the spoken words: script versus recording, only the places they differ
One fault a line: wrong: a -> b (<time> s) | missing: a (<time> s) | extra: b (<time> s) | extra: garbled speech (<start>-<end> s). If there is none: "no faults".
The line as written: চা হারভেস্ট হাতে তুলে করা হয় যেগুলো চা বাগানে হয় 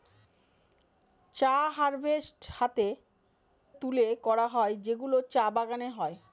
no faults